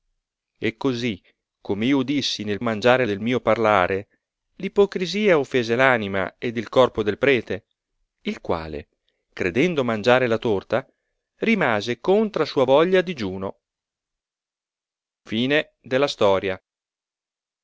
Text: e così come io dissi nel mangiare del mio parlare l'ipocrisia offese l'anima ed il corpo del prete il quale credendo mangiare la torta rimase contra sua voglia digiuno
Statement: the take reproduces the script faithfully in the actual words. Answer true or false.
true